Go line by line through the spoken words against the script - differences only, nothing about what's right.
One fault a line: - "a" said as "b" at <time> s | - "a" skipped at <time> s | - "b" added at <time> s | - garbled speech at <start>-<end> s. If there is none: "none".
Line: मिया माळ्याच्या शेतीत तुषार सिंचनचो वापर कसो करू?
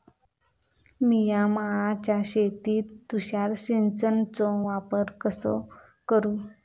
none